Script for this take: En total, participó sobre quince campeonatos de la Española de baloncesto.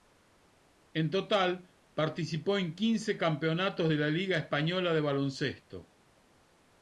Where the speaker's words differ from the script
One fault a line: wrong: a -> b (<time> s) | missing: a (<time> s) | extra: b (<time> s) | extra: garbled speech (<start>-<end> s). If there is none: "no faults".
wrong: sobre -> en (2.6 s)
extra: Liga (4.1 s)